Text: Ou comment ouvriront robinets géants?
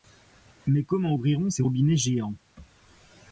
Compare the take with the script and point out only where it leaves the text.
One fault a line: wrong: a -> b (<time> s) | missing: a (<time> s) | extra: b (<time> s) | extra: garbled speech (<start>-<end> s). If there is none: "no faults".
wrong: Ou -> Mais (0.7 s)
extra: ces (1.5 s)